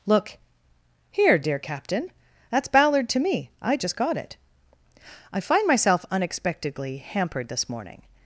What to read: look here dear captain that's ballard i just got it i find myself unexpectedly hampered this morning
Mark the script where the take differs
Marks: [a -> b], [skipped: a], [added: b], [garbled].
look here dear captain that's ballard [added: to me] i just got it i find myself unexpectedly hampered this morning